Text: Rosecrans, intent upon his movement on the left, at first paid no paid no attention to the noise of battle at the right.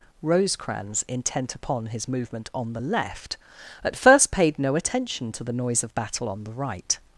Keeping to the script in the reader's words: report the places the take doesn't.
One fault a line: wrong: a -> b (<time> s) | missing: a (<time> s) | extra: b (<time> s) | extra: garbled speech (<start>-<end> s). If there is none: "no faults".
missing: paid no (4.7 s)
wrong: at -> on (6.3 s)